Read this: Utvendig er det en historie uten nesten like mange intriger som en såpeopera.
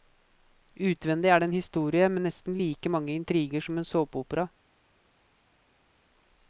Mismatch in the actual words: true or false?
true